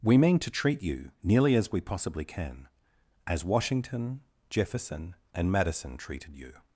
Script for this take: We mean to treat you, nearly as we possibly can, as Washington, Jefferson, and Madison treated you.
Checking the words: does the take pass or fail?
pass